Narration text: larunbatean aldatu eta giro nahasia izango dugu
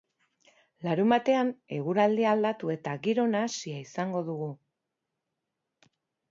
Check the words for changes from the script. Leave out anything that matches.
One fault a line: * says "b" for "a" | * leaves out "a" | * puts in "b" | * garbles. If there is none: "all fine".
* puts in "eguraldia"